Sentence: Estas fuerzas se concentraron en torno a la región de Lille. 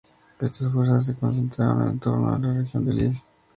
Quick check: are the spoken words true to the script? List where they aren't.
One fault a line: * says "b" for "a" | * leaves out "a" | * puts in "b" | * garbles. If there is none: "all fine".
all fine